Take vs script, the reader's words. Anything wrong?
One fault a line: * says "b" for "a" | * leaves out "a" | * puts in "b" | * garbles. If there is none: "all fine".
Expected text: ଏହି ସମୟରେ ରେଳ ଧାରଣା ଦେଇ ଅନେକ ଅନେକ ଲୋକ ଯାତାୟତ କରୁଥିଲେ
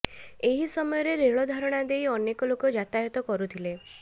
* leaves out "ଅନେକ"